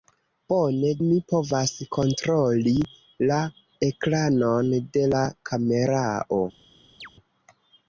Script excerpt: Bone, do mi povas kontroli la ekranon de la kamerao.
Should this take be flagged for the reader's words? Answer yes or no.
yes